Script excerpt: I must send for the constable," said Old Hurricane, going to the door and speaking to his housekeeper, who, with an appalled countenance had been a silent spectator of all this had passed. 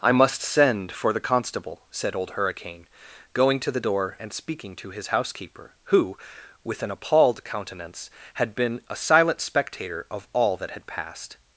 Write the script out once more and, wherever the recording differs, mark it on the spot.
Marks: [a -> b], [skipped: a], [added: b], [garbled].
I must send for the constable," said Old Hurricane, going to the door and speaking to his housekeeper, who, with an appalled countenance had been a silent spectator of all [this -> that] had passed.